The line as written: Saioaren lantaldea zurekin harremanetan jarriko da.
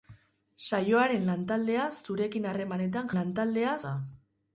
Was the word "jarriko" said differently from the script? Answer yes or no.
yes